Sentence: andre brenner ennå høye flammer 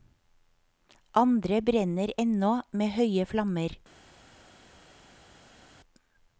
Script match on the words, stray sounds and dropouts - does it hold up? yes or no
no